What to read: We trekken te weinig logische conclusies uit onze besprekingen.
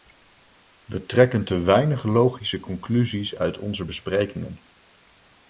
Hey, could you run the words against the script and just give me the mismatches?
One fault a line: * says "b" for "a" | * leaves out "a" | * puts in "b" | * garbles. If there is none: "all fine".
all fine